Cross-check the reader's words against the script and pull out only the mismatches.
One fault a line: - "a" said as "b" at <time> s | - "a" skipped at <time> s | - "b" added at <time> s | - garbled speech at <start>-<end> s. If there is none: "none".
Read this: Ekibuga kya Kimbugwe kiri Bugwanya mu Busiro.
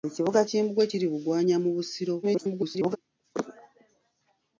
- "kya" skipped at 0.4 s
- garbled speech at 2.2-3.0 s